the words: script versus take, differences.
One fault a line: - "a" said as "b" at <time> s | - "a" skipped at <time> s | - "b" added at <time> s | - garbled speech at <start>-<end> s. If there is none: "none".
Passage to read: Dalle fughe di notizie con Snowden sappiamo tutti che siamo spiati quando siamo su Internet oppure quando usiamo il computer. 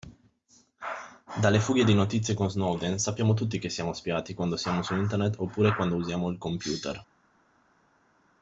none